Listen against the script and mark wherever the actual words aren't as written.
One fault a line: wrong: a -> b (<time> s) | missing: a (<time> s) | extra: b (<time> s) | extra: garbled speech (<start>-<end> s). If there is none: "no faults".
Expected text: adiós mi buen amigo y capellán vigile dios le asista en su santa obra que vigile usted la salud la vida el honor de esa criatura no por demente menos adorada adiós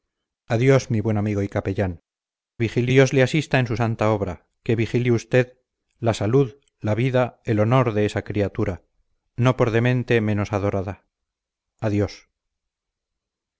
no faults